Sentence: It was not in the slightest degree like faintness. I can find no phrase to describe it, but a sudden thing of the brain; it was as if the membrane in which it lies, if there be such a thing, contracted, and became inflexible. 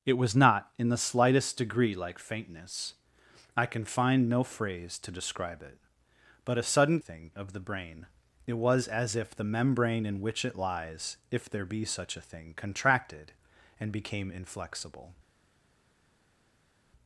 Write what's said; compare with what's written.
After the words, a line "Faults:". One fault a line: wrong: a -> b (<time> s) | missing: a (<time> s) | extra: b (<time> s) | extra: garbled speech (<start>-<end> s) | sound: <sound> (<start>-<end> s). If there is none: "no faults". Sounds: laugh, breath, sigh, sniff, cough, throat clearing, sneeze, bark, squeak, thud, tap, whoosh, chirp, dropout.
It was not in the slightest degree like faintness. I can find no phrase to describe it, but a sudden thing of the brain; it was as if the membrane in which it lies, if there be such a thing, contracted, and became inflexible.
Faults:
no faults